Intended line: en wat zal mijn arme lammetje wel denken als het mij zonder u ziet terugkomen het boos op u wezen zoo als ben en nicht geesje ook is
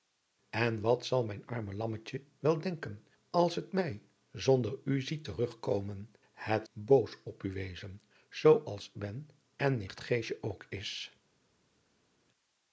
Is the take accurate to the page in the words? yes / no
yes